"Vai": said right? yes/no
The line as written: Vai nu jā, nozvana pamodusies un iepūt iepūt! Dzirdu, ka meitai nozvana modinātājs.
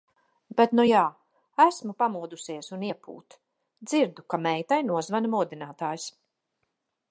no